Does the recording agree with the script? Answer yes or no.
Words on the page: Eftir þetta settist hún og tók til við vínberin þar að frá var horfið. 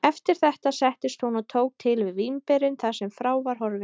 no